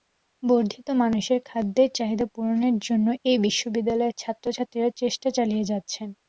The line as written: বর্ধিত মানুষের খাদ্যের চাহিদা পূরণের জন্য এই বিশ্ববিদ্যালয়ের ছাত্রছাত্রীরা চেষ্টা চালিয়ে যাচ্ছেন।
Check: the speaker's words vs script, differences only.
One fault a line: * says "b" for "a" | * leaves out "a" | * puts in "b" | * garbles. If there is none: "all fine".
all fine